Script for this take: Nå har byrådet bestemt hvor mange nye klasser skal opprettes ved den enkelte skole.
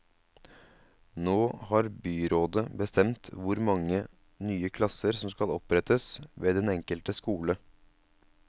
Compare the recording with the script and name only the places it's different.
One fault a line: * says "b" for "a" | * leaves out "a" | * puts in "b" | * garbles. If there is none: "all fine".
* puts in "som"